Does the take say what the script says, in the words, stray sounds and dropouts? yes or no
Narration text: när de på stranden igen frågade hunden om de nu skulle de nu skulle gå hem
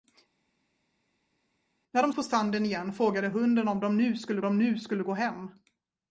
yes